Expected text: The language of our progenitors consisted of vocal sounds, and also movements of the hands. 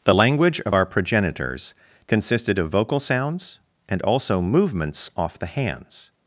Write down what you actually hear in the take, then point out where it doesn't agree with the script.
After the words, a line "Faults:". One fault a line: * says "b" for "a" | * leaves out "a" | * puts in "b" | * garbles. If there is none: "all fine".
The language of our progenitors consisted of vocal sounds, and also movements off the hands.
Faults:
* says "off" for "of"